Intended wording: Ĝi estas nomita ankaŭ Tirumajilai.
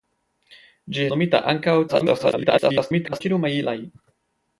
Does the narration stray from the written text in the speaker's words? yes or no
yes